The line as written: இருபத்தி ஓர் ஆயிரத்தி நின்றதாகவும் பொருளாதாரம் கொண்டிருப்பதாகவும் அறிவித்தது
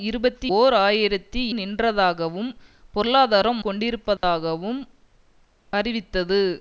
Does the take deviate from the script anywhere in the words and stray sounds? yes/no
yes